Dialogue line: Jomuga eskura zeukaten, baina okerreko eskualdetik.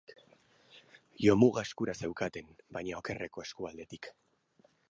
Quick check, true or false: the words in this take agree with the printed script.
true